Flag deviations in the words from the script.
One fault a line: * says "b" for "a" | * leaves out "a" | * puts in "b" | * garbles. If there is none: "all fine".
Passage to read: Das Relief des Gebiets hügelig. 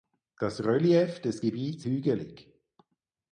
all fine